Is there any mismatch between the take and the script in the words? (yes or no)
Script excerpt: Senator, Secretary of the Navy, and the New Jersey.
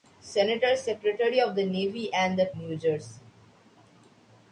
no